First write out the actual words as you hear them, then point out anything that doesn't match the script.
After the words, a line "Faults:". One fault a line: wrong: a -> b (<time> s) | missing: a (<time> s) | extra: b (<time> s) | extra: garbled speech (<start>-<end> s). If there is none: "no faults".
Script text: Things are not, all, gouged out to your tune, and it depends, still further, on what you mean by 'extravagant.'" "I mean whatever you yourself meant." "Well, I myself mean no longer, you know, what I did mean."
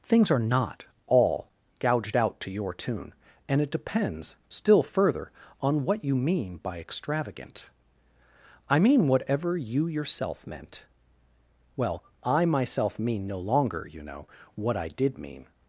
Things are not, all, gouged out to your tune, and it depends, still further, on what you mean by 'extravagant.'" "I mean whatever you yourself meant." "Well, I myself mean no longer, you know, what I did mean."
Faults:
no faults